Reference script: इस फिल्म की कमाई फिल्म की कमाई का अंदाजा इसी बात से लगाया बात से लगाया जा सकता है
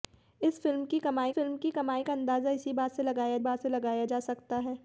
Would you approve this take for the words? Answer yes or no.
yes